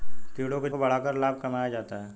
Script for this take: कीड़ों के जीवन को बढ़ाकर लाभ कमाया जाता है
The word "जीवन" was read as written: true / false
false